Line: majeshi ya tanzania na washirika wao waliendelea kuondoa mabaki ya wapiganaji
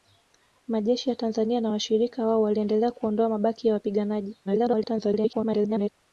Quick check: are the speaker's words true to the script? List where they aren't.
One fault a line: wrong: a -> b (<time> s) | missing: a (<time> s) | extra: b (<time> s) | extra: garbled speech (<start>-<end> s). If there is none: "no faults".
extra: garbled speech (4.4-5.9 s)